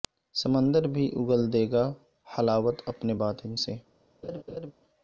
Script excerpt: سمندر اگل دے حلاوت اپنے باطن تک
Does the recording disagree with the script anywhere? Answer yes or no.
yes